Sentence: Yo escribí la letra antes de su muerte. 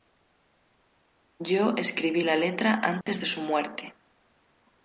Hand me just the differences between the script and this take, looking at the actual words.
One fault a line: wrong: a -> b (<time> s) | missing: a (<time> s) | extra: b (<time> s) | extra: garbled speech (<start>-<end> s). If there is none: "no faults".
no faults